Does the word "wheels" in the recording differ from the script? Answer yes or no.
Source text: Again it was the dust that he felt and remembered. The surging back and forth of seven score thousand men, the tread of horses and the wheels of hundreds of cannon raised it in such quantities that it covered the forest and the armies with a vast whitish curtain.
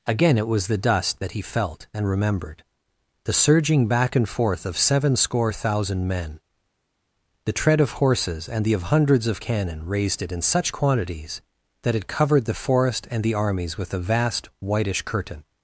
yes